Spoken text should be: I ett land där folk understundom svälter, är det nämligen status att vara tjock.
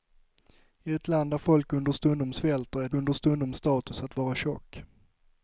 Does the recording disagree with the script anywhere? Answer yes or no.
yes